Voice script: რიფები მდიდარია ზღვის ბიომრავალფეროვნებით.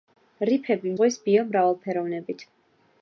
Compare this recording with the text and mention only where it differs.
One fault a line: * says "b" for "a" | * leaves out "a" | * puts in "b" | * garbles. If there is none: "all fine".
* leaves out "მდიდარია"